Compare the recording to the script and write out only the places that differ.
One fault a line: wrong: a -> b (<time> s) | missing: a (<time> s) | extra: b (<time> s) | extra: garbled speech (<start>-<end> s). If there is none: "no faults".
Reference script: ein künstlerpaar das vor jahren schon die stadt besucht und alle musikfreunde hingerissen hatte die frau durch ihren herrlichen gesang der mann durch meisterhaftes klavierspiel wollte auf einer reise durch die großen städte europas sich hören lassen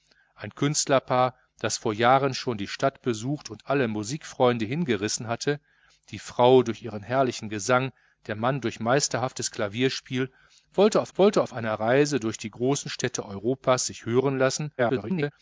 extra: wollte auf (11.1 s)
extra: garbled speech (14.8-15.3 s)